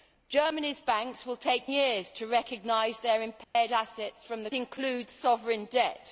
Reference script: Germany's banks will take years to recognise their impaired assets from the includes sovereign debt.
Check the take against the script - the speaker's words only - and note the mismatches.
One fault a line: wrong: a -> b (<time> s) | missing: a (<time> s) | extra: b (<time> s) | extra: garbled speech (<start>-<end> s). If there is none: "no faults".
no faults